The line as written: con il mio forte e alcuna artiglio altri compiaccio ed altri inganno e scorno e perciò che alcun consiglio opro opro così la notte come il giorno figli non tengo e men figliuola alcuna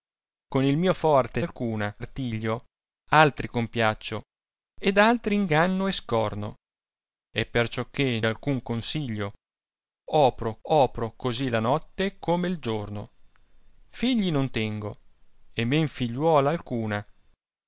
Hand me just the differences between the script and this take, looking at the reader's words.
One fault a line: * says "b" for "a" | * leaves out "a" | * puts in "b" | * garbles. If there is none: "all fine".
all fine